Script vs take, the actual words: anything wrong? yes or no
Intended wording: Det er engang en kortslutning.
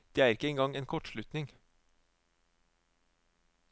yes